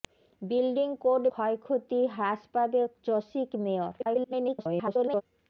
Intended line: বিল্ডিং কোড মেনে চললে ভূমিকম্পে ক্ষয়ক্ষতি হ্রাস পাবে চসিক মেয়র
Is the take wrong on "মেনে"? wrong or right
wrong